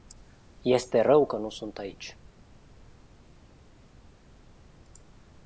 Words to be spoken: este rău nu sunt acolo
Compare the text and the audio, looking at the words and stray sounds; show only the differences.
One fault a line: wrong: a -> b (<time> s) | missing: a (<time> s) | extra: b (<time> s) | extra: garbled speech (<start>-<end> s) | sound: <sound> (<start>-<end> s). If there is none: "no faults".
extra: că (1.2 s)
wrong: acolo -> aici (1.8 s)